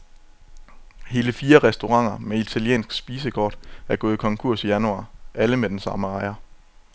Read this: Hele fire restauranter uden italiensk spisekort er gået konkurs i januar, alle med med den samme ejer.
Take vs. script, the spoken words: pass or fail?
fail